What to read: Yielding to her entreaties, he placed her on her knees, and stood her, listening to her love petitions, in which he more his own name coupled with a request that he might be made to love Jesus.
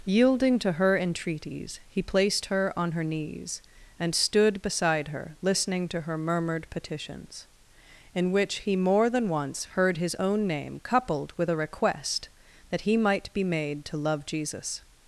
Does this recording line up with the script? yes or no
no